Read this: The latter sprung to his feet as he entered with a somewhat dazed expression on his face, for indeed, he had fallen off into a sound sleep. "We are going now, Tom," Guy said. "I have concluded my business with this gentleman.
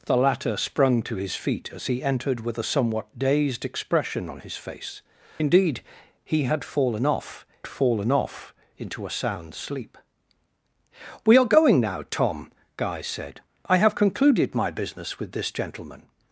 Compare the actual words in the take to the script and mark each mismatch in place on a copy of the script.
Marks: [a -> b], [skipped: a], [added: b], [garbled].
The latter sprung to his feet as he entered with a somewhat dazed expression on his face, [skipped: for] indeed, he had fallen off [added: fallen off] into a sound sleep. "We are going now, Tom," Guy said. "I have concluded my business with this gentleman.